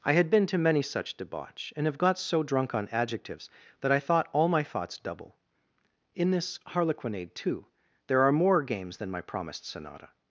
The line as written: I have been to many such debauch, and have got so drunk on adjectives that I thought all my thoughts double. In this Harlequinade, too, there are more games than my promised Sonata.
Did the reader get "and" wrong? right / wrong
right